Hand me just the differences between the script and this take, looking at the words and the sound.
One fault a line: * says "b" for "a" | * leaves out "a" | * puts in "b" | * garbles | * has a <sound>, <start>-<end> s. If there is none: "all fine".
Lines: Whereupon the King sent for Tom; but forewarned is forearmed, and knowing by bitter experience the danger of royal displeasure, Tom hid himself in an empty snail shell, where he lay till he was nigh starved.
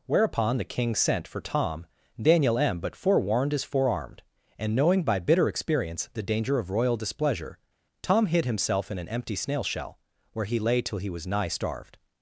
* puts in "daniel m"